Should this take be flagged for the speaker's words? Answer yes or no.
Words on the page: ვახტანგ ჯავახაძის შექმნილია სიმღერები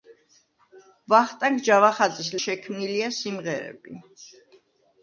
no